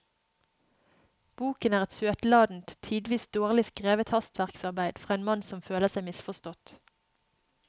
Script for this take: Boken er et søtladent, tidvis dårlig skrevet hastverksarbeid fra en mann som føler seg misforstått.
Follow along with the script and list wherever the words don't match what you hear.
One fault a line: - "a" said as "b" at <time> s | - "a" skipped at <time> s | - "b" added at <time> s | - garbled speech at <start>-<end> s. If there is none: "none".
none